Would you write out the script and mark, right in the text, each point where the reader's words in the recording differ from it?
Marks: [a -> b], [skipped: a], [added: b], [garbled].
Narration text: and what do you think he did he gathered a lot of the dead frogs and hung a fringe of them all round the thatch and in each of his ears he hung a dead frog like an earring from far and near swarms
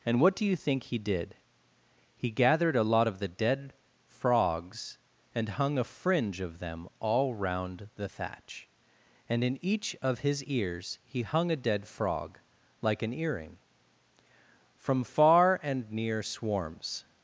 and what do you think he did he gathered a lot of the dead frogs and hung a fringe of them all round the thatch and in each of his ears he hung a dead frog like an earring from far and near swarms